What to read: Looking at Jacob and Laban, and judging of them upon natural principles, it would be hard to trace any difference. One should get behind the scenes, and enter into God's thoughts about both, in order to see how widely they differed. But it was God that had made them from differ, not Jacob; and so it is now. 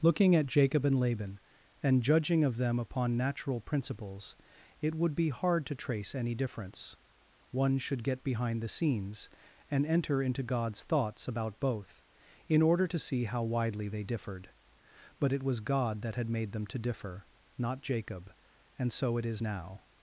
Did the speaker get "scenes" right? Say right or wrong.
right